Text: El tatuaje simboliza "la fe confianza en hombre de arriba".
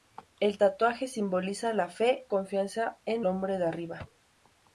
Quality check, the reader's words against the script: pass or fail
pass